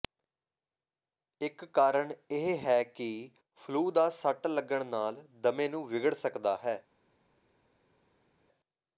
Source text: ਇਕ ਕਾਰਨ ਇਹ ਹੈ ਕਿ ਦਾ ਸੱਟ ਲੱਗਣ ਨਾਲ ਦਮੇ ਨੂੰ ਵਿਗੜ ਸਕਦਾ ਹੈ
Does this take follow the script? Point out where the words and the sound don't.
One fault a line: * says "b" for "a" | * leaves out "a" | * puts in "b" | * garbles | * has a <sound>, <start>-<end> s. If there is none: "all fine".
* puts in "ਫਲੂ"